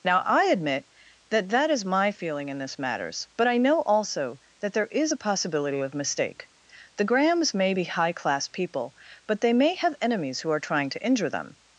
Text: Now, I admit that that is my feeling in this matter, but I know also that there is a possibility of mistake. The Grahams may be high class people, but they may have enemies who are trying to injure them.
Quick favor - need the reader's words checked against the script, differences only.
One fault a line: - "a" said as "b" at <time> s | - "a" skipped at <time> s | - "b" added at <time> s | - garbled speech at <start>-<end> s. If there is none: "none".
- "matter" said as "matters" at 2.8 s